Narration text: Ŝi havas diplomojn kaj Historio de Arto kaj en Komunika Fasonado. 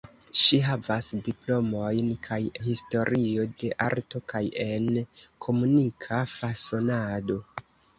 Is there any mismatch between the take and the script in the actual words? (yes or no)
no